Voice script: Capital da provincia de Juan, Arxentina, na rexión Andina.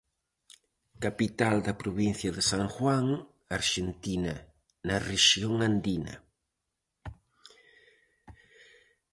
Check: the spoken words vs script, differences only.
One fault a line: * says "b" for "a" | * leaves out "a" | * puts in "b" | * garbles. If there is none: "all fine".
* puts in "San"